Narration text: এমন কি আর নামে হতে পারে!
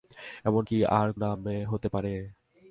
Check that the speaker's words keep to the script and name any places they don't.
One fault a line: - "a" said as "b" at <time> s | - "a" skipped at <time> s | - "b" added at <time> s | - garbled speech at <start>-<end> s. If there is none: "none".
none